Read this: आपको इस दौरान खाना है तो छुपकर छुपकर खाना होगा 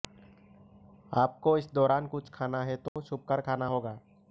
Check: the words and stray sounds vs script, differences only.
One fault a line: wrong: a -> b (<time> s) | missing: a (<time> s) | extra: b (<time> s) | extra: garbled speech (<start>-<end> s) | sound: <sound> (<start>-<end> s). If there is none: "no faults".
extra: कुछ (2.1 s)
sound: dropout (2.9-3.0 s)
missing: छुपकर (3.4 s)